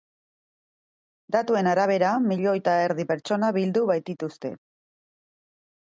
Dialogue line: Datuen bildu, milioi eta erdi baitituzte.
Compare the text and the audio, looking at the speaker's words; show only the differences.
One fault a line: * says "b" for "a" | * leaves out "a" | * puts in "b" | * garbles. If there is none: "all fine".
* says "arabera" for "bildu"
* puts in "pertsona bildu"